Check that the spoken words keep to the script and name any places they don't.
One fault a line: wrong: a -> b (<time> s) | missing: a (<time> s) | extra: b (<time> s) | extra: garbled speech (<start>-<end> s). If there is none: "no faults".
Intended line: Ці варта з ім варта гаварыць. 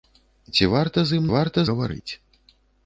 no faults